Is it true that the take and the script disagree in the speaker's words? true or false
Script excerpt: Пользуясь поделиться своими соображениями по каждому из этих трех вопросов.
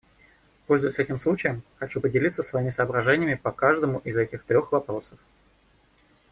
true